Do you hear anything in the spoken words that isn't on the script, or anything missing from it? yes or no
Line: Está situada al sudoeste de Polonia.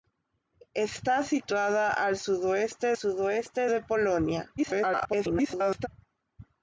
yes